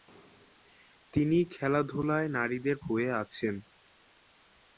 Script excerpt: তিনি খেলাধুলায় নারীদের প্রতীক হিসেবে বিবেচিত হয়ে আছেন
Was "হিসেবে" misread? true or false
true